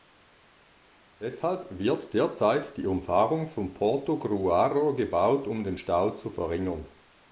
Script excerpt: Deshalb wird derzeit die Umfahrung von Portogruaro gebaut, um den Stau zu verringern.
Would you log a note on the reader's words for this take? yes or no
no